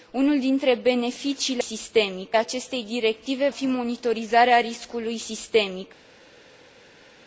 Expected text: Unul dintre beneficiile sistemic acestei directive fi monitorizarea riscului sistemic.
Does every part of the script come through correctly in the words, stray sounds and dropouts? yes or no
yes